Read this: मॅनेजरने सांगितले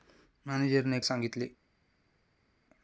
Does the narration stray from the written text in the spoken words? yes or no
no